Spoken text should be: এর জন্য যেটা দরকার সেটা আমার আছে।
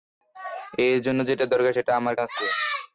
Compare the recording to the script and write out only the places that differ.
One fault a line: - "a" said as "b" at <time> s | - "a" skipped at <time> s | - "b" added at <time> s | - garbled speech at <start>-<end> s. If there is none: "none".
none